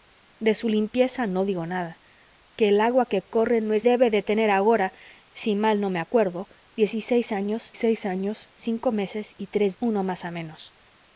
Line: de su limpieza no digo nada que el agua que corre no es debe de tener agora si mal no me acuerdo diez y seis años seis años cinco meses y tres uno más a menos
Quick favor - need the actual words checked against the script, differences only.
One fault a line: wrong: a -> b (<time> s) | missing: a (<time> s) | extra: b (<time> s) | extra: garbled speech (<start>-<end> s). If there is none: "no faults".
no faults